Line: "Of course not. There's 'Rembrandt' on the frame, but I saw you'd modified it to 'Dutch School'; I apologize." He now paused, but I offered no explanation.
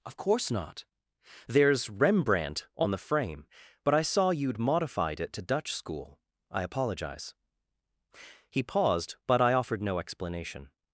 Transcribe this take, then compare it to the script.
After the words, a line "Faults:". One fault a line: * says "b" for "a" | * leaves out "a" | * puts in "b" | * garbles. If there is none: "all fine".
"Of course not. There's 'Rembrandt' on the frame, but I saw you'd modified it to 'Dutch School'; I apologize." He paused, but I offered no explanation.
Faults:
* leaves out "now"